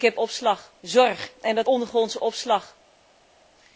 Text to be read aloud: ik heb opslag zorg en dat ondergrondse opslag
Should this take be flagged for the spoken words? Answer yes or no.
no